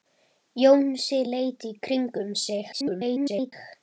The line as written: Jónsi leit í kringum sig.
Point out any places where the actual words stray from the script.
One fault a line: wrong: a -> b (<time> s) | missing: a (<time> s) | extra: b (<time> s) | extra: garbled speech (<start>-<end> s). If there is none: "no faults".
extra: garbled speech (2.7-3.5 s)